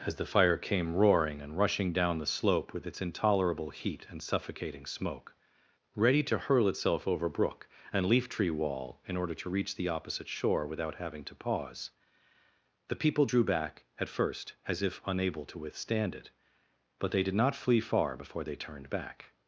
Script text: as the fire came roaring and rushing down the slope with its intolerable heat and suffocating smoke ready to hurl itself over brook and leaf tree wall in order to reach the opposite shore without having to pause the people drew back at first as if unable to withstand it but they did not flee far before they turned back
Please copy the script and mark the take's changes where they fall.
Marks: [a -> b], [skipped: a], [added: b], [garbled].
as the fire came roaring and rushing down the slope with its intolerable heat and suffocating smoke ready to hurl itself over brook and leaf tree wall in order to reach the opposite shore without having to pause the people drew back at first as if unable to withstand it but they did not flee far before they turned back